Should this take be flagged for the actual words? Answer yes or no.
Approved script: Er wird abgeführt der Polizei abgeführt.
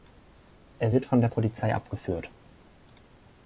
yes